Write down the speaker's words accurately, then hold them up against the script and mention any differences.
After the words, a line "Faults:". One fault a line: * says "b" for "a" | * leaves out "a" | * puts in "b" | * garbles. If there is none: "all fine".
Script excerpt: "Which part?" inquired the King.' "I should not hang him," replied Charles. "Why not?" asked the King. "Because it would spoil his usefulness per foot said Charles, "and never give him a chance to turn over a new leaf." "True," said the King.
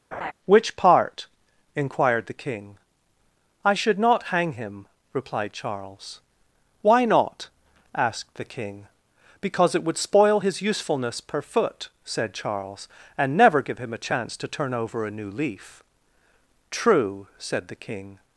"Which part?" inquired the King.' "I should not hang him," replied Charles. "Why not?" asked the King. "Because it would spoil his usefulness per foot said Charles, "and never give him a chance to turn over a new leaf." "True," said the King.
Faults:
all fine